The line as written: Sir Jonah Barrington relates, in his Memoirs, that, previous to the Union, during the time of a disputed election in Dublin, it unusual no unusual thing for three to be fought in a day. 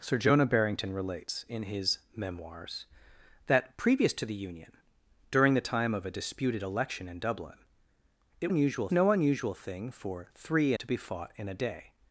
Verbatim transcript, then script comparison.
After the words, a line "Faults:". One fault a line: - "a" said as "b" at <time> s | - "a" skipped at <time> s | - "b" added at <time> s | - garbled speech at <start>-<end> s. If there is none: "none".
Sir Jonah Barrington relates, in his Memoirs, that, previous to the Union, during the time of a disputed election in Dublin, it unusual no unusual thing for three to be fought in a day.
Faults:
none